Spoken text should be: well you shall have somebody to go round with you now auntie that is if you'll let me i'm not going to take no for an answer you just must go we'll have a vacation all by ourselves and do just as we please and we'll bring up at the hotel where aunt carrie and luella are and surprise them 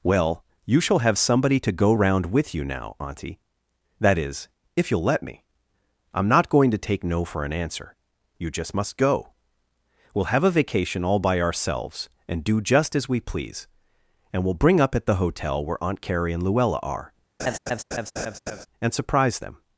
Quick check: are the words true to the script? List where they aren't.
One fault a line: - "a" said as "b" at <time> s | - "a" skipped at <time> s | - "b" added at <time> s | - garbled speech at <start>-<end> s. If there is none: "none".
none